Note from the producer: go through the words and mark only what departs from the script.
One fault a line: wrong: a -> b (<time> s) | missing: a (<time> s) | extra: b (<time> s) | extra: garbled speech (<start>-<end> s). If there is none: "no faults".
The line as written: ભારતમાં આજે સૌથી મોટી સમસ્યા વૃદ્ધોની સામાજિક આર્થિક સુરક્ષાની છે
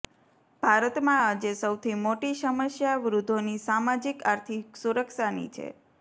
no faults